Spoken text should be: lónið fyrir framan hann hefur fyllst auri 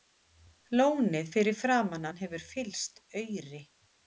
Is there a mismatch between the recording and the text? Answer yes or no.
no